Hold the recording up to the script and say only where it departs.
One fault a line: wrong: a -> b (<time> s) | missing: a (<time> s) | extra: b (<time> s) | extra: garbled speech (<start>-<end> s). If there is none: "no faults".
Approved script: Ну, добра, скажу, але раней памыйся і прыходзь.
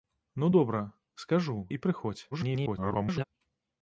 missing: але раней памыйся (1.6 s)
extra: garbled speech (2.3-3.2 s)